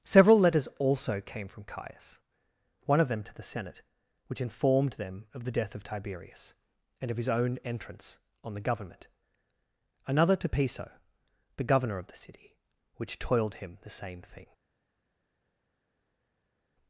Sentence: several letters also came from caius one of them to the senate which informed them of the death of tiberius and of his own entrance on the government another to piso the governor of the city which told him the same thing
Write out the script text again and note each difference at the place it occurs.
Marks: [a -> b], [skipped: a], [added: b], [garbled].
several letters also came from caius one of them to the senate which informed them of the death of tiberius and of his own entrance on the government another to piso the governor of the city which [told -> toiled] him the same thing